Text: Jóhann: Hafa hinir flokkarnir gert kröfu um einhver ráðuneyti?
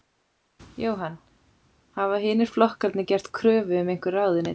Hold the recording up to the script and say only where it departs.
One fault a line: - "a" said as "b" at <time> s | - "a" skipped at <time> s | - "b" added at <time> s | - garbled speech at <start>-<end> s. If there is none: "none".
none